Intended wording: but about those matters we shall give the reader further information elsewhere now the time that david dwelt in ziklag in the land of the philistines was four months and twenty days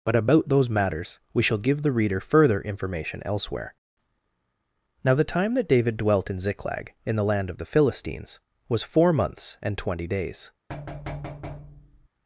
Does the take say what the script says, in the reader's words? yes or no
yes